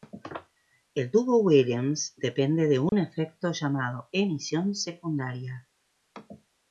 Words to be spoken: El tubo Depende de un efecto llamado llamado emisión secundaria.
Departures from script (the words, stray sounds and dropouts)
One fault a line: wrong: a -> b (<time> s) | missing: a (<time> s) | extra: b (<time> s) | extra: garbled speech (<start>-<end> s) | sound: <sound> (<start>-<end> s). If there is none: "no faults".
extra: Williams (1.4 s)
sound: dropout (2.9-2.9 s)
missing: llamado (4.1 s)